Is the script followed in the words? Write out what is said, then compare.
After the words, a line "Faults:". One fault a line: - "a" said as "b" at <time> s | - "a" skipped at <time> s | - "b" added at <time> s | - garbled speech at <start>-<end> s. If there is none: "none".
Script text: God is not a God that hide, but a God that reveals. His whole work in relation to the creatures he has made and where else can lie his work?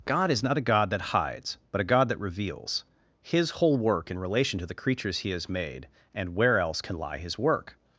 God is not a God that hides, but a God that reveals. His whole work in relation to the creatures he has made and where else can lie his work?
Faults:
- "hide" said as "hides" at 1.1 s